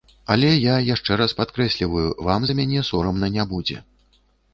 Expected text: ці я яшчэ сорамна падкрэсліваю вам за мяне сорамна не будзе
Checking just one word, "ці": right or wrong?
wrong